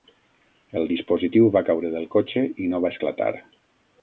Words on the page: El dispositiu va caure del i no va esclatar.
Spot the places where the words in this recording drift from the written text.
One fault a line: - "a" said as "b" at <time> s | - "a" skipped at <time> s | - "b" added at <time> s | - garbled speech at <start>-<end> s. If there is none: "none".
- "cotxe" added at 2.2 s